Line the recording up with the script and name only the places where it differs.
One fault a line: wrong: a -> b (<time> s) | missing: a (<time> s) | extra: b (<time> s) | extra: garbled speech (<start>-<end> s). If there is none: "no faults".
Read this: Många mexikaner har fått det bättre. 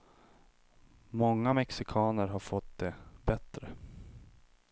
no faults